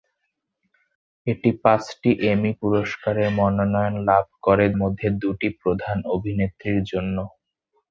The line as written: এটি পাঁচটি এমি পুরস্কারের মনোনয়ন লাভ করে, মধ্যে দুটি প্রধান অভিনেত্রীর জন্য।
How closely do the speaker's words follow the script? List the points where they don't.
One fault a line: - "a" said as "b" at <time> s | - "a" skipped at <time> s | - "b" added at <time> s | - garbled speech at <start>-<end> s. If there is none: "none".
none